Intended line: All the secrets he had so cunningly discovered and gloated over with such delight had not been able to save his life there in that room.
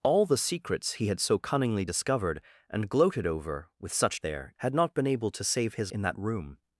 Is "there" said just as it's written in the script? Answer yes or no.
no